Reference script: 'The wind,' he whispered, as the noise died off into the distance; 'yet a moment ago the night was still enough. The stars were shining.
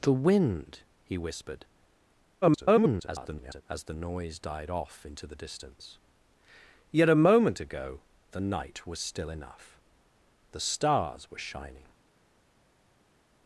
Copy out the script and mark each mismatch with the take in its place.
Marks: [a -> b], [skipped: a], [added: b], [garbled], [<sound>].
'The wind,' he whispered, [garbled] as the noise died off into the distance; 'yet a moment ago the night was still enough. The stars were shining.